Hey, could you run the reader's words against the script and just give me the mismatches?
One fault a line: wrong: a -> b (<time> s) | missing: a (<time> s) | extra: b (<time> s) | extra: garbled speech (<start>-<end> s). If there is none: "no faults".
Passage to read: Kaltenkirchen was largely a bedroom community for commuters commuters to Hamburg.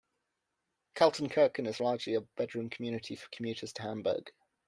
wrong: was -> is (1.7 s)
missing: commuters (3.7 s)